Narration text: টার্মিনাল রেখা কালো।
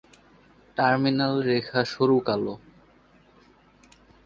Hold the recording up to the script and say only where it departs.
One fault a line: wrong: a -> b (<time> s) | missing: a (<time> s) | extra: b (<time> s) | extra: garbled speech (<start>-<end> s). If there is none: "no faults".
extra: সরু (1.9 s)